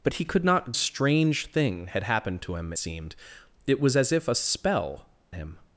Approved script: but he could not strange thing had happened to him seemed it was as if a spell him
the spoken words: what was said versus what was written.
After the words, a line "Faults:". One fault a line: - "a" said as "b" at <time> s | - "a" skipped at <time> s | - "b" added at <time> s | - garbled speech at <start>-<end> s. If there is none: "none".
but he could not strange thing had happened to him seemed it was as if a spell him
Faults:
none